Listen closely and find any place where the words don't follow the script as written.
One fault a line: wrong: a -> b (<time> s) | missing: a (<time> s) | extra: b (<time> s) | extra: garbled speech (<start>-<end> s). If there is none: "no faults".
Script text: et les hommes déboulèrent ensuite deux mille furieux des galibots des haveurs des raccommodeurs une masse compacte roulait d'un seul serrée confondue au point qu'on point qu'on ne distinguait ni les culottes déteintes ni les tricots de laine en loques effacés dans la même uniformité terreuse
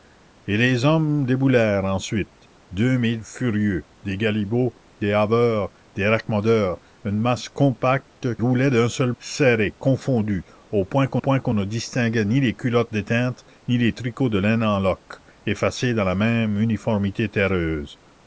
no faults